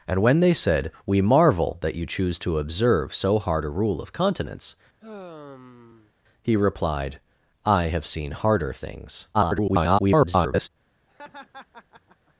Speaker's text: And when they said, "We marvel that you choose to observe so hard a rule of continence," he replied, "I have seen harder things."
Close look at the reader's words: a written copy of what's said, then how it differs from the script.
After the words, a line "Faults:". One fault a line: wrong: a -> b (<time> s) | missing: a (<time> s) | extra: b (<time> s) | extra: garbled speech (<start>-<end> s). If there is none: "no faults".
And when they said, "We marvel that you choose to observe so hard a rule of continence," he replied, "I have seen harder things." [garbled]
Faults:
extra: garbled speech (9.3-10.7 s)